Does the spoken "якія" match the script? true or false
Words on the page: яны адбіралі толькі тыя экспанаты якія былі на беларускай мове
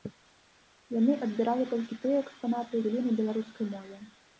false